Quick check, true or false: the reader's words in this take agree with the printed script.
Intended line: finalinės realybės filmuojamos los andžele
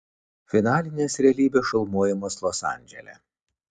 true